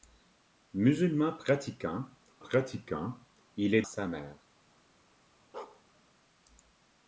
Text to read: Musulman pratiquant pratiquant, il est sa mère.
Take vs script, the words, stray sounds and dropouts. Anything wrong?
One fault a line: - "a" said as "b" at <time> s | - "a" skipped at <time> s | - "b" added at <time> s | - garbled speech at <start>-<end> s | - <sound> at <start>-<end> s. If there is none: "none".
- bark at 5.5-5.8 s